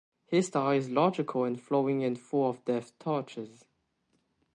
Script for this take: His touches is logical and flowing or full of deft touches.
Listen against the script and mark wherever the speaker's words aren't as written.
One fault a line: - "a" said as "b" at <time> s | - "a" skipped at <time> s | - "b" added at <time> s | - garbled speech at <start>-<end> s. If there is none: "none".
- "touches" said as "style" at 0.4 s
- "or" said as "and" at 2.0 s